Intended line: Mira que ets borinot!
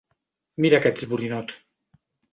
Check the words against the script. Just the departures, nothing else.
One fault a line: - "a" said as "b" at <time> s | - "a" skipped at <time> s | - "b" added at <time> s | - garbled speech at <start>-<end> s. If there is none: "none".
none